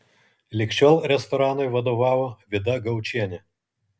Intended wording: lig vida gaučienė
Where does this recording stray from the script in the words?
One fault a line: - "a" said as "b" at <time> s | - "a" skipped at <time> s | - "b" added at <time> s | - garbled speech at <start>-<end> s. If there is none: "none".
- "šiol restoranui vadovavo" added at 0.8 s